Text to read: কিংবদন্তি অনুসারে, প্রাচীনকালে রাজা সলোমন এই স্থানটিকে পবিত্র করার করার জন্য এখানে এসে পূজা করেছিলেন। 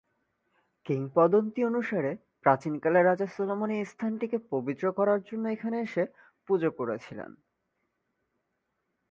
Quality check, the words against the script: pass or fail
fail